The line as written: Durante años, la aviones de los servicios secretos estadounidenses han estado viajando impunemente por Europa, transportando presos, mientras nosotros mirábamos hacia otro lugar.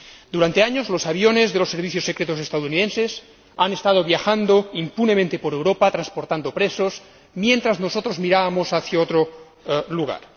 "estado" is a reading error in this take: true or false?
false